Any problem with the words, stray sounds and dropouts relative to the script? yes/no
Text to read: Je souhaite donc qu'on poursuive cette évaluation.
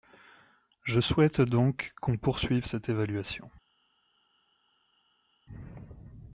no